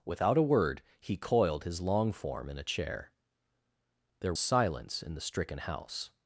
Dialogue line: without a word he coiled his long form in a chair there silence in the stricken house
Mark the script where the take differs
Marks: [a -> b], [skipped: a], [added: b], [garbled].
without a word he coiled his long form in a chair there silence in the stricken house